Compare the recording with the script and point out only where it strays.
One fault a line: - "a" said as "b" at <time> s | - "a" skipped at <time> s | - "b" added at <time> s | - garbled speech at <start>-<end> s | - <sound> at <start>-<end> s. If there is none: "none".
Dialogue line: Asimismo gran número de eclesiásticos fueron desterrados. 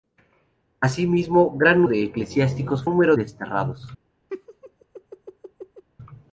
- "número" skipped at 1.8 s
- "fueron" said as "número" at 2.8 s
- laugh at 4.3-5.8 s